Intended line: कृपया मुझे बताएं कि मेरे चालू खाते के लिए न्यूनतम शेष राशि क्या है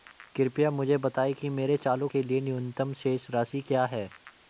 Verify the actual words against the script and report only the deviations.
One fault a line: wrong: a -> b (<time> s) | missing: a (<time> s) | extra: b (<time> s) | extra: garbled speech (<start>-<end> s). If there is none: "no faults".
missing: खाते (2.1 s)